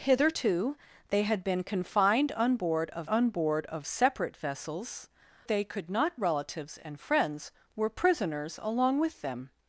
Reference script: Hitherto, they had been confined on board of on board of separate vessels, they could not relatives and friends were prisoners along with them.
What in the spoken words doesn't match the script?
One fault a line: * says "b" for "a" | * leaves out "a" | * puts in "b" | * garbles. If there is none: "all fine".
all fine